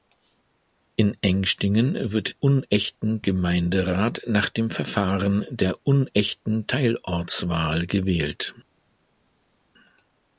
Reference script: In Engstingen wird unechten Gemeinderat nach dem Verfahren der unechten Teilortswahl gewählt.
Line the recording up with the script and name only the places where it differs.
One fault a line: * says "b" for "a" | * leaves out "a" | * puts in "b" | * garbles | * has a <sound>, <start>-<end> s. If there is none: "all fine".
all fine